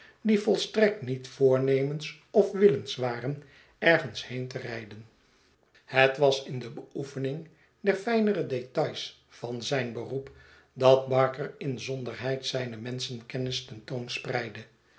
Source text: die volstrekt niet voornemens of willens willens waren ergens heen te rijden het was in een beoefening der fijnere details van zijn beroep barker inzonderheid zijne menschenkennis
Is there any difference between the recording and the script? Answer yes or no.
yes